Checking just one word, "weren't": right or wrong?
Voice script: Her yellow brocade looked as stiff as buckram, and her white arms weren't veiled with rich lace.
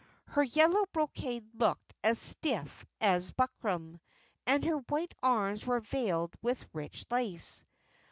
wrong